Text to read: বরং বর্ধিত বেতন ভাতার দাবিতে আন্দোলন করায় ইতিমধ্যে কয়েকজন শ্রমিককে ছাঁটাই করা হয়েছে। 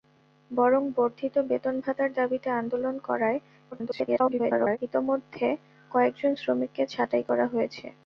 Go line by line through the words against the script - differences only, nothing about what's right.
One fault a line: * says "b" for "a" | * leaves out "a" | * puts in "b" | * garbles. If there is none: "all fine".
* garbles